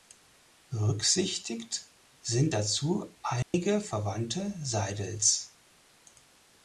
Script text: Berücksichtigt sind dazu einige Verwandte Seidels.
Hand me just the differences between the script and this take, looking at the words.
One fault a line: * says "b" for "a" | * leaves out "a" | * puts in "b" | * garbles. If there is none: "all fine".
all fine